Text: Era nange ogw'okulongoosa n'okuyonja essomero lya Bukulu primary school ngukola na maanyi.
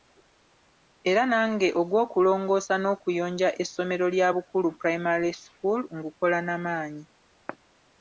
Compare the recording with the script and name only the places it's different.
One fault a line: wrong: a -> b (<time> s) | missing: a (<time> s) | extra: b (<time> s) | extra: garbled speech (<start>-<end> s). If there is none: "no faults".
no faults